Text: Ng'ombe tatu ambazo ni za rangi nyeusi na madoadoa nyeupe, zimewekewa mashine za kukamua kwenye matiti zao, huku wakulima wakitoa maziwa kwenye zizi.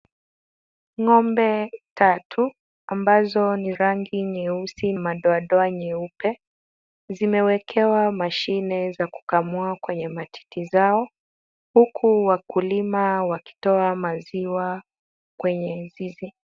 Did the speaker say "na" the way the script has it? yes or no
no